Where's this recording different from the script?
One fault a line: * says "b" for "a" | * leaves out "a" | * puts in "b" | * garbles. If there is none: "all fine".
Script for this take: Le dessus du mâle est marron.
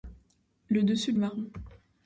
* leaves out "du mâle"